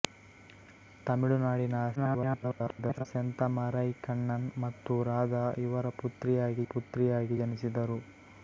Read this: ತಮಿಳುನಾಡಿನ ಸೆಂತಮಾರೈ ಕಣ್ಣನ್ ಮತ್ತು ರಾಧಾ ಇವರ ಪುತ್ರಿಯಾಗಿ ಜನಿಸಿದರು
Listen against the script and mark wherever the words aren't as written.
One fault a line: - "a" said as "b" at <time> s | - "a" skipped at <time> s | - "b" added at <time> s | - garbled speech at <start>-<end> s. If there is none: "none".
- garbled speech at 2.0-3.1 s
- "ಪುತ್ರಿಯಾಗಿ" added at 6.7 s